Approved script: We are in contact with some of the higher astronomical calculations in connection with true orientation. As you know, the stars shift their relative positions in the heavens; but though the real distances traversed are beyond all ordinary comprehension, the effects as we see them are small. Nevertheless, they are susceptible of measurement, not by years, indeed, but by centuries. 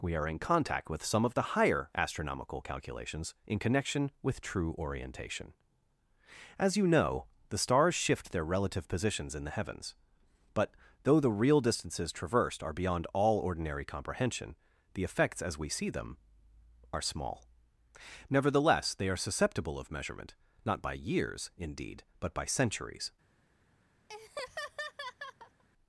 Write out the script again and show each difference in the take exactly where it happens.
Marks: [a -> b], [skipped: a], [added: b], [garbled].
We are in contact with some of the higher astronomical calculations in connection with true orientation. As you know, the stars shift their relative positions in the heavens; but though the real distances traversed are beyond all ordinary comprehension, the effects as we see them are small. Nevertheless, they are susceptible of measurement, not by years, indeed, but by centuries.